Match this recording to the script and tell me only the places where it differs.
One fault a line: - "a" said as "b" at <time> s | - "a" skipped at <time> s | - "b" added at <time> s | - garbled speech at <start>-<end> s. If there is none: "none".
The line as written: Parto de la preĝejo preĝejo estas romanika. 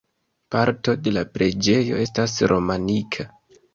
- "preĝejo" skipped at 2.0 s